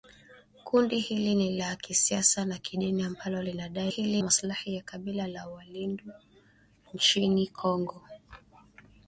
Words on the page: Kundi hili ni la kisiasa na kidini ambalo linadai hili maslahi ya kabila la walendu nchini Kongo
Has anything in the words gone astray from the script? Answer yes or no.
no